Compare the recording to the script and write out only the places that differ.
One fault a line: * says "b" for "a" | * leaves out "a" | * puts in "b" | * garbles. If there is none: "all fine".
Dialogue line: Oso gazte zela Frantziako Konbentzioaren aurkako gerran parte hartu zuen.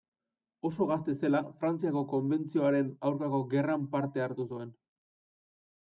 all fine